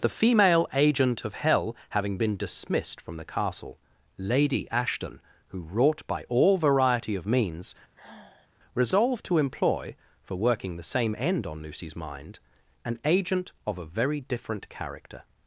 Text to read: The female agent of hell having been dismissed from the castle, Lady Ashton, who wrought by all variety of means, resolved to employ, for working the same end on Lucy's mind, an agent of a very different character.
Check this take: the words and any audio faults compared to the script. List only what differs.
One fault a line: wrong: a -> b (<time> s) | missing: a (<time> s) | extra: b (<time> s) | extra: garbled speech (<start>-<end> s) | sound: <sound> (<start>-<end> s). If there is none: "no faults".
sound: sigh (8.0-8.5 s)